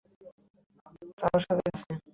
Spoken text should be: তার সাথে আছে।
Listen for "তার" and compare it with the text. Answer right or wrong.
right